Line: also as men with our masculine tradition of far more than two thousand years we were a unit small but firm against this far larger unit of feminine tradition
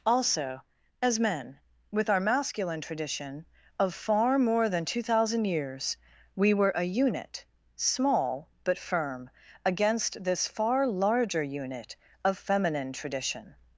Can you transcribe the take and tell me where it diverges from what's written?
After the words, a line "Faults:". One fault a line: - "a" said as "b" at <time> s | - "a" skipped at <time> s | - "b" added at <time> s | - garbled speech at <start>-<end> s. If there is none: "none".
also as men with our masculine tradition of far more than two thousand years we were a unit small but firm against this far larger unit of feminine tradition
Faults:
none